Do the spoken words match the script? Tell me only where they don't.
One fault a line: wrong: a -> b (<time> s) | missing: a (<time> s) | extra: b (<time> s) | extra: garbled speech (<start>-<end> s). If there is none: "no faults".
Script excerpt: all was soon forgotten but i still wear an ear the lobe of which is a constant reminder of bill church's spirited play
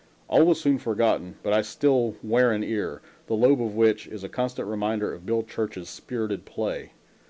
no faults